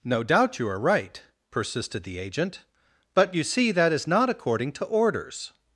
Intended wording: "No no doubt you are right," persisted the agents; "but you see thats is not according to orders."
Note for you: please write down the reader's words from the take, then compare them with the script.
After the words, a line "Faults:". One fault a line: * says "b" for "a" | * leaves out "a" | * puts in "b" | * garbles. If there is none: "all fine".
"No doubt you are right," persisted the agent; "but you see that is not according to orders."
Faults:
* leaves out "no"
* says "agent" for "agents"
* says "that" for "thats"